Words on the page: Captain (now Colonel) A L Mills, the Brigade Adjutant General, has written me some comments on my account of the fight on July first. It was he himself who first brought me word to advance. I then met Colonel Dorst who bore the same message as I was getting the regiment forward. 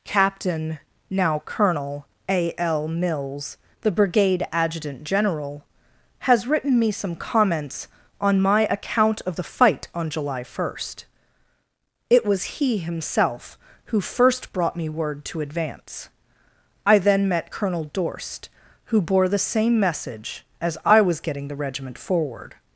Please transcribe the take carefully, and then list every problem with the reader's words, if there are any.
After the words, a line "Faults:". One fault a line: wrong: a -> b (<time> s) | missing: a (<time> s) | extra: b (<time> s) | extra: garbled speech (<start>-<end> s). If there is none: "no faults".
Captain (now Colonel) A L Mills, the Brigade Adjutant General, has written me some comments on my account of the fight on July first. It was he himself who first brought me word to advance. I then met Colonel Dorst who bore the same message as I was getting the regiment forward.
Faults:
no faults